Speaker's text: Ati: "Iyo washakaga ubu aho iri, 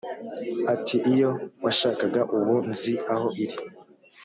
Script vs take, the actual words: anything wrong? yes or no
yes